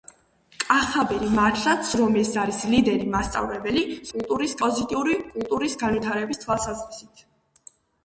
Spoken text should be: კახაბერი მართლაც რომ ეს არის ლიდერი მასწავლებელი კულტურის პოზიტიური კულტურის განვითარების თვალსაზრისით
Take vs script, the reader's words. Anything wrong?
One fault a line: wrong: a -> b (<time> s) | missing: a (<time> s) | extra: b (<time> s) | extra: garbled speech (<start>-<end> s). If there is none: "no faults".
no faults